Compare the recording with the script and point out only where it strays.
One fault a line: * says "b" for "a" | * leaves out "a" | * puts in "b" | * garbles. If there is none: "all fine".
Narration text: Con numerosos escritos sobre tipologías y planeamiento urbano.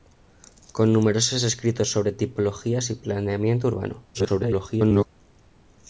* garbles